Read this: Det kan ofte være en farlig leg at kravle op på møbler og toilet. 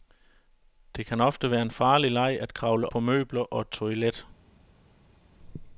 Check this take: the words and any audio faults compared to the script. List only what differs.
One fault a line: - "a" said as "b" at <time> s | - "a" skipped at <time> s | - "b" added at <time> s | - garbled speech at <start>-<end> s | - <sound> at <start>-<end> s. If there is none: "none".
- "op" skipped at 2.9 s